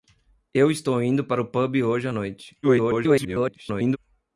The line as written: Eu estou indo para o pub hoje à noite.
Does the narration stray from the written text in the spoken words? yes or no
yes